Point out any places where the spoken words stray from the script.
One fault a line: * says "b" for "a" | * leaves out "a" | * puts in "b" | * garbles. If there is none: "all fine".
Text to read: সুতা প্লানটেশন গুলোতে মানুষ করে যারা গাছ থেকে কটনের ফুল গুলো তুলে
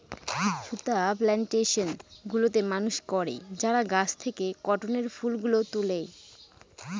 all fine